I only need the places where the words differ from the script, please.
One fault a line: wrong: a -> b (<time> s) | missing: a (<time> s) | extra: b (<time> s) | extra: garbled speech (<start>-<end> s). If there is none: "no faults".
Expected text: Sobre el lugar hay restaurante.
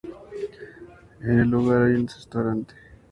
wrong: Sobre -> En (1.2 s)
extra: un (2.0 s)